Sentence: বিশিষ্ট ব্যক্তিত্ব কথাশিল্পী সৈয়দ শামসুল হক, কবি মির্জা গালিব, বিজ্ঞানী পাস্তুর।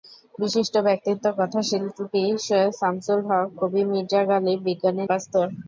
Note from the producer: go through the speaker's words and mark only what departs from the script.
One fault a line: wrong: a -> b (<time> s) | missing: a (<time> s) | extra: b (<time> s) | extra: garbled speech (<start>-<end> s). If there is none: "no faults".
no faults